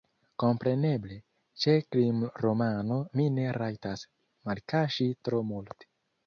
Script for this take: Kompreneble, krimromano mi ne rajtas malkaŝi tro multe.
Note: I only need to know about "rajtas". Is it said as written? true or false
true